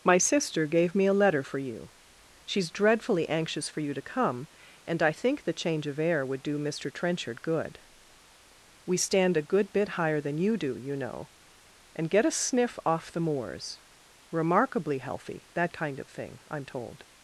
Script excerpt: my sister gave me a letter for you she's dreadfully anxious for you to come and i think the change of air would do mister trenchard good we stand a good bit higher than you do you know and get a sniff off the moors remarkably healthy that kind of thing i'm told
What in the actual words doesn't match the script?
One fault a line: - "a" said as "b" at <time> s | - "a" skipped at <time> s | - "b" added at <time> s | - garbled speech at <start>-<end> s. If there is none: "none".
none